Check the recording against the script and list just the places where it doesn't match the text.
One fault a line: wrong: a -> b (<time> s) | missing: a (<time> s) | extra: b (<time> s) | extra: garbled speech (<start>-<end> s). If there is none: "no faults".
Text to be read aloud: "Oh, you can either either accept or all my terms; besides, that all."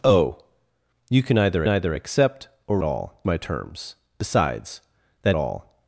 no faults